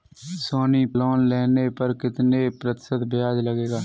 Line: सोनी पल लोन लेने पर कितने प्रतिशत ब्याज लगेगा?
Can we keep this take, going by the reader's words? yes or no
no